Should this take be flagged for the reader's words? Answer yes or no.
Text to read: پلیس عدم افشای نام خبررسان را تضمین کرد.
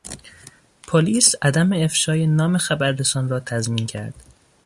no